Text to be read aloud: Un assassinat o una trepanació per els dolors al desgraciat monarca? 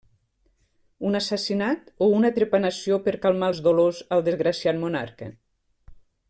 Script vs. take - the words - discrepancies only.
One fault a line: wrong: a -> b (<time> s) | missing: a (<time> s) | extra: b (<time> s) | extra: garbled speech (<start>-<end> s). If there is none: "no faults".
extra: calmar (3.3 s)